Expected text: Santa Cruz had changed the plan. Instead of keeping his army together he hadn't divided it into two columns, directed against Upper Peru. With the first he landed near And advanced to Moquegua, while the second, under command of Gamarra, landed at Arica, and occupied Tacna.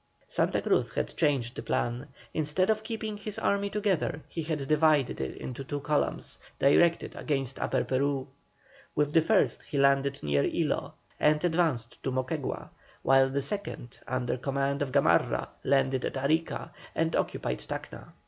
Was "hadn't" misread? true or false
true